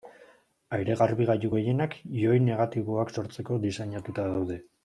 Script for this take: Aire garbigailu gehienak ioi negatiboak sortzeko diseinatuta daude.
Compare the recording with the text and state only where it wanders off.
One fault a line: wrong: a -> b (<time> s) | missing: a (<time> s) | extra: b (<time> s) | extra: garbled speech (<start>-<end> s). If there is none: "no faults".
no faults